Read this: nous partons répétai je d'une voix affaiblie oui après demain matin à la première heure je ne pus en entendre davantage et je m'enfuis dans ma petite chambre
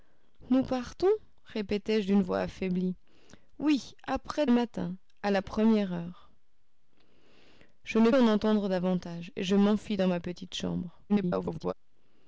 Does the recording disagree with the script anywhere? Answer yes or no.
yes